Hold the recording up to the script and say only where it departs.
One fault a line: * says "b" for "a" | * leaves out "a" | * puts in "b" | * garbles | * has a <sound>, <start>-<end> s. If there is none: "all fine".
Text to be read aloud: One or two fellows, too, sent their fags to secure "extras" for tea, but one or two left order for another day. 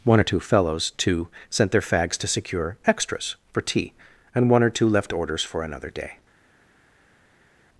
* says "and" for "but"
* says "orders" for "order"